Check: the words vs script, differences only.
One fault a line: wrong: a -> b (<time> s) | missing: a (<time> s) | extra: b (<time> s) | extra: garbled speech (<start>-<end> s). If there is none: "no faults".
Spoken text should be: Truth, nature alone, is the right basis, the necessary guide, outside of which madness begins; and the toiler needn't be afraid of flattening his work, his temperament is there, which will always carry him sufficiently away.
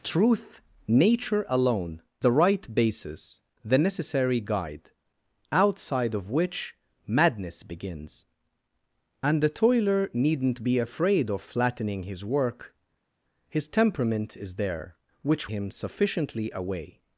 missing: is (2.0 s)
missing: will always carry (15.5 s)